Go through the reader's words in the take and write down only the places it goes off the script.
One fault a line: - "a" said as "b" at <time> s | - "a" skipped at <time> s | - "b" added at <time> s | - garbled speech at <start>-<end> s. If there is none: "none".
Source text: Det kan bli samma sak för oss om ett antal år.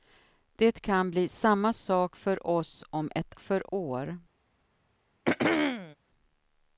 - "antal" said as "för" at 3.4 s